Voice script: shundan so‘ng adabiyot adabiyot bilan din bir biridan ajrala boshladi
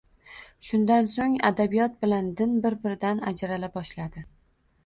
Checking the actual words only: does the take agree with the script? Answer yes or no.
no